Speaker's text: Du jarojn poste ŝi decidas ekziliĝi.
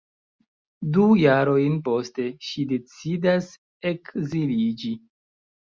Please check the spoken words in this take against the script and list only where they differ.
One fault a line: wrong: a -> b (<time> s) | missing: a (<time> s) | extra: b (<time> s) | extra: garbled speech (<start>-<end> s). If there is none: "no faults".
no faults